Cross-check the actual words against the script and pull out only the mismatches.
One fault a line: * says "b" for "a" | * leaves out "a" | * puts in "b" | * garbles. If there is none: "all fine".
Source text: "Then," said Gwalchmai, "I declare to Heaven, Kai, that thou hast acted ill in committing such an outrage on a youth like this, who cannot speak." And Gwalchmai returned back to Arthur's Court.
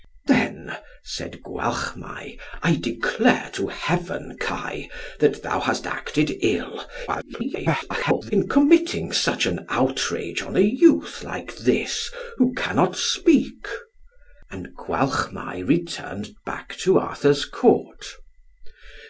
* garbles